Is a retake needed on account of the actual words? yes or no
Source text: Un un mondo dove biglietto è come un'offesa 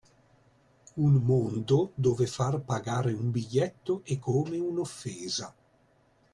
yes